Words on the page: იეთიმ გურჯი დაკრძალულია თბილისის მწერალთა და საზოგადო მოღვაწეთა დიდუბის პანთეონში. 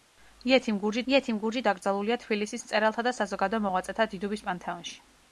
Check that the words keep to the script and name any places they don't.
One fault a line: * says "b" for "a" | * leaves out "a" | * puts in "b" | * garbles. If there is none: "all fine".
* puts in "იეთიმ გურჯი"